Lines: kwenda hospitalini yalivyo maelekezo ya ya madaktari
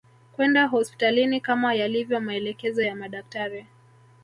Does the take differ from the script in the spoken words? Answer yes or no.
yes